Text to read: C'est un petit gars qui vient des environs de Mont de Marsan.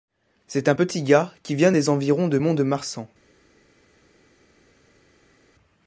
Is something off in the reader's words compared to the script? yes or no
no